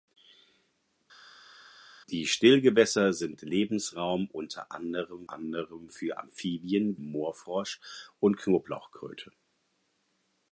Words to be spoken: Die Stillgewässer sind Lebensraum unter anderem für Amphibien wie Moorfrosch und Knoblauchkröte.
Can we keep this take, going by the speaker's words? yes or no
no